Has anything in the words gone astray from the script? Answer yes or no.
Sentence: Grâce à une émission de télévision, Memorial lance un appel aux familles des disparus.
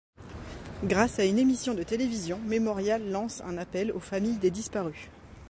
no